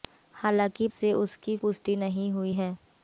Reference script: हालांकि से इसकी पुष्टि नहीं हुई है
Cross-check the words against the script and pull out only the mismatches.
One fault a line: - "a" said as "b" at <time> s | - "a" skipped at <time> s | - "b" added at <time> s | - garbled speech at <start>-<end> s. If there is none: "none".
none